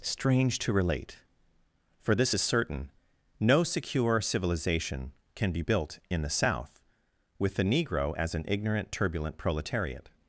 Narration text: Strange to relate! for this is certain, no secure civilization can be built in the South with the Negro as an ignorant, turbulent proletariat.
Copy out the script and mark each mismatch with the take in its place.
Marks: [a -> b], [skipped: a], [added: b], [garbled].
Strange to relate! for this is certain, no secure civilization can be built in the South with the Negro as an ignorant, turbulent proletariat.